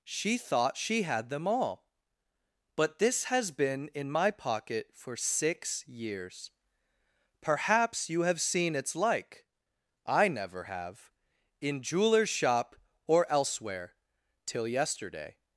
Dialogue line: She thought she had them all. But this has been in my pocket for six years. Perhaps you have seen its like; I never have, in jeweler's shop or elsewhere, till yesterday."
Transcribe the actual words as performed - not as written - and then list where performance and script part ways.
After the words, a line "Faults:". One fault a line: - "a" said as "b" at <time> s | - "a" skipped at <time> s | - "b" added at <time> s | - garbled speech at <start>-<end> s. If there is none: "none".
She thought she had them all. But this has been in my pocket for six years. Perhaps you have seen its like; I never have, in jeweler's shop or elsewhere, till yesterday."
Faults:
none